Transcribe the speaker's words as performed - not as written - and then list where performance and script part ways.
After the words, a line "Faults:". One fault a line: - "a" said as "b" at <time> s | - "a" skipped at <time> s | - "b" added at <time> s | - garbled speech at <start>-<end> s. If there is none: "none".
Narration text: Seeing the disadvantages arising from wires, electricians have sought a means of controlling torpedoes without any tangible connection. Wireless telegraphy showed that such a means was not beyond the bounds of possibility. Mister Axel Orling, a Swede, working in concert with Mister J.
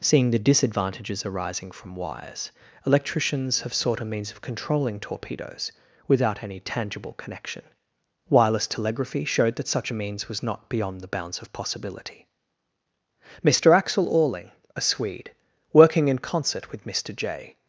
Seeing the disadvantages arising from wires, electricians have sought a means of controlling torpedoes without any tangible connection. Wireless telegraphy showed that such a means was not beyond the bounds of possibility. Mister Axel Orling, a Swede, working in concert with Mister J.
Faults:
none